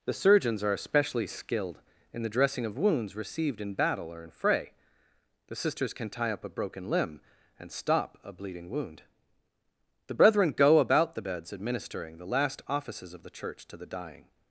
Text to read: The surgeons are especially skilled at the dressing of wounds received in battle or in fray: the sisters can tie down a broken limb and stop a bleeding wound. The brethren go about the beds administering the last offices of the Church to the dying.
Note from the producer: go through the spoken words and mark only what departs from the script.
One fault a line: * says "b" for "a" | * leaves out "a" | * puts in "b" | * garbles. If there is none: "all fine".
* says "in" for "at"
* says "up" for "down"